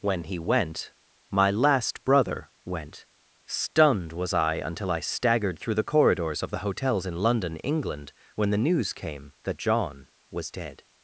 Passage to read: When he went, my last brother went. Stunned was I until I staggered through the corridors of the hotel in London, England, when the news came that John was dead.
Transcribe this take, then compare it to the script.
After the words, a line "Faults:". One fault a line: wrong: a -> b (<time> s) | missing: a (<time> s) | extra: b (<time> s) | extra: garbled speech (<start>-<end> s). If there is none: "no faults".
When he went, my last brother went. Stunned was I until I staggered through the corridors of the hotels in London, England, when the news came that John was dead.
Faults:
wrong: hotel -> hotels (6.6 s)